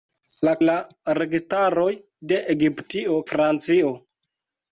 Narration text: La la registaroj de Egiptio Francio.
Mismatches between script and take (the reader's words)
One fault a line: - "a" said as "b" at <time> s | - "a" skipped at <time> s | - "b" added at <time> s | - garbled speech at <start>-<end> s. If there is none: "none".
none